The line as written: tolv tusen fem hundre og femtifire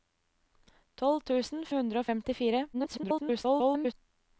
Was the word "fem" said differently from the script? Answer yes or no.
yes